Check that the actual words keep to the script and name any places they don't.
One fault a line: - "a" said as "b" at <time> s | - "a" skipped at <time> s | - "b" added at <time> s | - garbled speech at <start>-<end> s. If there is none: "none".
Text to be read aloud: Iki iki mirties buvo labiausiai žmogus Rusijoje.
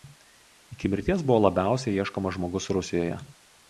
- "iki" skipped at 0.9 s
- "ieškomas" added at 2.0 s